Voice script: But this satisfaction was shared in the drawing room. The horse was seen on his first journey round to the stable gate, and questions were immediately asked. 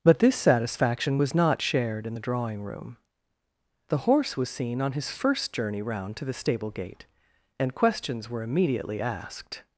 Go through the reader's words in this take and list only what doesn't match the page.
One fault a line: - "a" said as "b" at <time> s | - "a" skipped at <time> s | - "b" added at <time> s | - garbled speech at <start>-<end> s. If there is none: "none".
- "not" added at 1.3 s